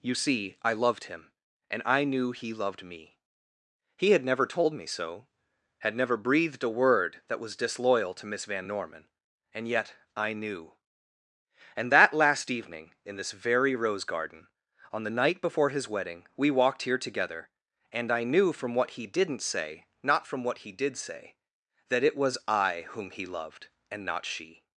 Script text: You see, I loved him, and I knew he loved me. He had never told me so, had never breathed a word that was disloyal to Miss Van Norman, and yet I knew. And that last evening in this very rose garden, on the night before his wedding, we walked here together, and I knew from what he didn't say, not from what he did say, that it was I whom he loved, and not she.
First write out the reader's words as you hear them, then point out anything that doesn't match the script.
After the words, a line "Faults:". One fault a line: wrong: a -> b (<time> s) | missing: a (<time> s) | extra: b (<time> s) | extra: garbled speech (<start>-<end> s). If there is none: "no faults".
You see, I loved him, and I knew he loved me. He had never told me so, had never breathed a word that was disloyal to Miss Van Norman, and yet I knew. And that last evening in this very rose garden, on the night before his wedding, we walked here together, and I knew from what he didn't say, not from what he did say, that it was I whom he loved, and not she.
Faults:
no faults